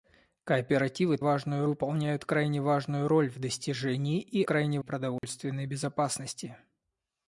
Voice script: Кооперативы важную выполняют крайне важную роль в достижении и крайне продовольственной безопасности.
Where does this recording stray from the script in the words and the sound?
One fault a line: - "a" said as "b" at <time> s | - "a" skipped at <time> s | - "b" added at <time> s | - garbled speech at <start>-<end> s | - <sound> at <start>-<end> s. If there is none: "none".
- dropout at 5.2-5.2 s